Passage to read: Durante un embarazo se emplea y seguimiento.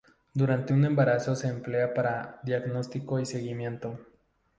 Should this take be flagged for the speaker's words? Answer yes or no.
yes